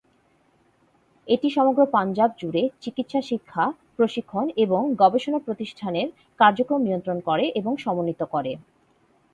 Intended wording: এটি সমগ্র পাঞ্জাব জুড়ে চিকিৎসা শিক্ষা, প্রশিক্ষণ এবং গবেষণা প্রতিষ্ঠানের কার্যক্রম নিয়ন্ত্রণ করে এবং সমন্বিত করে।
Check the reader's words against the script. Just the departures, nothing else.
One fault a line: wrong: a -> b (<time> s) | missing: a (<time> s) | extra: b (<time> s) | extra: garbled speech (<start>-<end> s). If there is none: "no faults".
no faults